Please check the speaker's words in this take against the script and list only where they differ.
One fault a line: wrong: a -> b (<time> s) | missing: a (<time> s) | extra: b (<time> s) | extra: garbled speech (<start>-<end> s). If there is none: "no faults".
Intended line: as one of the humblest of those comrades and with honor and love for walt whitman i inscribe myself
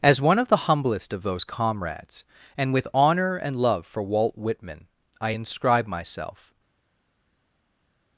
no faults